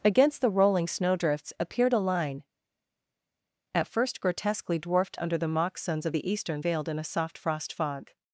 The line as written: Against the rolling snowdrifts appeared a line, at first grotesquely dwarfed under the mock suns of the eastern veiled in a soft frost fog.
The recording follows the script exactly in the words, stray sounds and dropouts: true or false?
true